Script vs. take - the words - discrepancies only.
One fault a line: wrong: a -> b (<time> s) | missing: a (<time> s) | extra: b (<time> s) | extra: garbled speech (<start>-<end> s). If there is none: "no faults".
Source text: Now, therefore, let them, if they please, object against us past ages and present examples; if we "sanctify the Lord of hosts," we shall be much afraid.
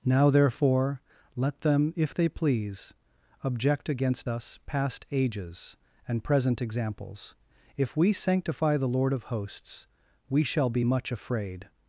no faults